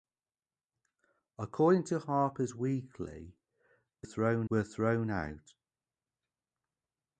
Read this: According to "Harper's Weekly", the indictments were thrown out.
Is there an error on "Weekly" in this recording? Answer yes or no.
no